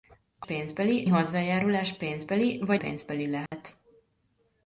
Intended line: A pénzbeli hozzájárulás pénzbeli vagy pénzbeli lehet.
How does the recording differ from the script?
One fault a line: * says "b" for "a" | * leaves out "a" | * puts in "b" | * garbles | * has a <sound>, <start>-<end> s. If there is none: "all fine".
* has a dropout, 3.5-3.5 s